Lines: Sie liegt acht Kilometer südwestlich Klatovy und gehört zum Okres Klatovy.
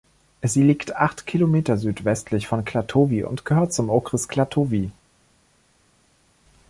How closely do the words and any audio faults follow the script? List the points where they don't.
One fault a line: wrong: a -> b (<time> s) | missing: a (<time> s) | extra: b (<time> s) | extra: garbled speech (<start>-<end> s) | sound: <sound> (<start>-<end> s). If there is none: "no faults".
extra: von (2.5 s)